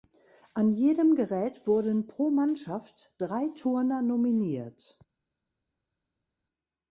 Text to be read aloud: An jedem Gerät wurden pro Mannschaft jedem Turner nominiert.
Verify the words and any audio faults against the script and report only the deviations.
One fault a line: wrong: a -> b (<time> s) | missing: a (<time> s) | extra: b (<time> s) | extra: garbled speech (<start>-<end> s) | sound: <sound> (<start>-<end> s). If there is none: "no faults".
wrong: jedem -> drei (3.2 s)